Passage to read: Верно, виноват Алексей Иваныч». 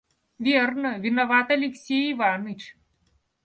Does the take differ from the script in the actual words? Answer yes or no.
no